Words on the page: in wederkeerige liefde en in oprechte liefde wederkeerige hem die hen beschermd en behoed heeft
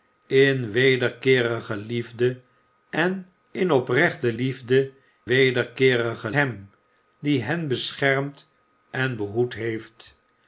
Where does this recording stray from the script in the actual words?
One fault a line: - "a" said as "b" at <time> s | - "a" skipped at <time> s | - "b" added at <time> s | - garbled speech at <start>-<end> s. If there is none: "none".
none